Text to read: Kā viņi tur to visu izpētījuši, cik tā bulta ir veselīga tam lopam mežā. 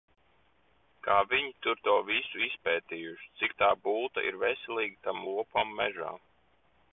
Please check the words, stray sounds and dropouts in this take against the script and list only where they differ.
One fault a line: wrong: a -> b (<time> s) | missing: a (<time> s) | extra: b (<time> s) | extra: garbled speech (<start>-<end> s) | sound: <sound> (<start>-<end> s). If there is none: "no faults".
no faults